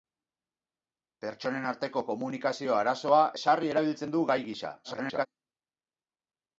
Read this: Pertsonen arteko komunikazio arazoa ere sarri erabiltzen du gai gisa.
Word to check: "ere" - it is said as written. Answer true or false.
false